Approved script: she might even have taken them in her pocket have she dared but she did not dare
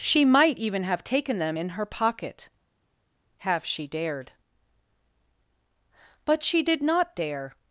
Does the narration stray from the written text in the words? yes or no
no